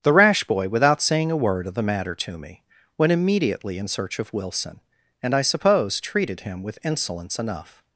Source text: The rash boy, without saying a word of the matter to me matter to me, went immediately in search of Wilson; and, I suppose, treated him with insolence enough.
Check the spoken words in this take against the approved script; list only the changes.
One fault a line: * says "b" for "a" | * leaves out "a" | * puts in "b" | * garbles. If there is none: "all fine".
* leaves out "matter to me"